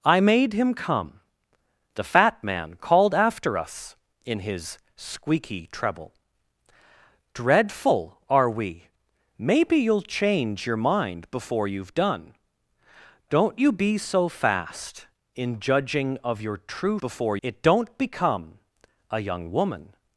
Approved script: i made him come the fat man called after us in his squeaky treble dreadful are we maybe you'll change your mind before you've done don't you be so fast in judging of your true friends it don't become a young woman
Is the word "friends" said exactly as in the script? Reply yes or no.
no